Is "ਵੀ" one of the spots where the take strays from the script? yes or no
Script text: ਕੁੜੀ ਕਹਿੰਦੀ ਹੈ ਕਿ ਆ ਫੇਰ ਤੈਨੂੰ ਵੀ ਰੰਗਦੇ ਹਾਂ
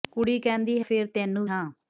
yes